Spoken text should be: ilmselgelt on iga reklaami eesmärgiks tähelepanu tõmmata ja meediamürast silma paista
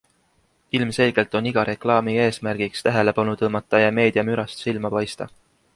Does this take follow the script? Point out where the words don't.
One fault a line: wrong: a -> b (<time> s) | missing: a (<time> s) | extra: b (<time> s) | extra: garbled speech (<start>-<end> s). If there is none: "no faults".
no faults